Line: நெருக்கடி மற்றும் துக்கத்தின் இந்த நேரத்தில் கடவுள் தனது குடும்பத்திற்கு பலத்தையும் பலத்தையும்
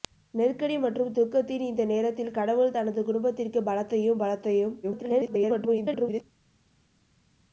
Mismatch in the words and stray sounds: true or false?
true